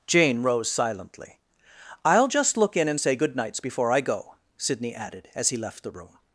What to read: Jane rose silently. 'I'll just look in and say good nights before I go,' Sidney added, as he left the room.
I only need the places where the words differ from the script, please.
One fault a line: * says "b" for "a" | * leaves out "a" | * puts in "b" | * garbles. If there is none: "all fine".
all fine